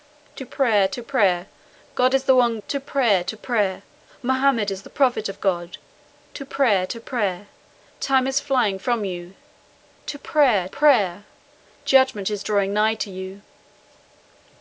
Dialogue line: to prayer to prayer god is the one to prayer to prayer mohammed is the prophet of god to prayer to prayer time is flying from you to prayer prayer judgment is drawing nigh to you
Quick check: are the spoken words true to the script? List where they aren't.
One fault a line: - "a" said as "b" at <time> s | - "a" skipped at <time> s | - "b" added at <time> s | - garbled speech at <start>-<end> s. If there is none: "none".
none